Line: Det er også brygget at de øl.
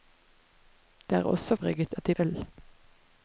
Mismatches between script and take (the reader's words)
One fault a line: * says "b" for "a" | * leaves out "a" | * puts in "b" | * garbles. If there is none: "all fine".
all fine